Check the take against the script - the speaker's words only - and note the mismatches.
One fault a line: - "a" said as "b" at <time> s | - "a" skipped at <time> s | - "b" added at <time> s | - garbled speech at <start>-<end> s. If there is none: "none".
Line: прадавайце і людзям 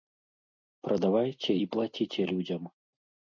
- "плаціце" added at 1.8 s